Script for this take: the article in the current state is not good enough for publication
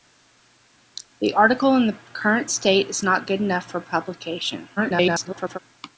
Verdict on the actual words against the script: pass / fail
fail